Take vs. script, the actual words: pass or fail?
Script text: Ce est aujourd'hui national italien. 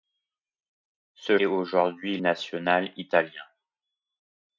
pass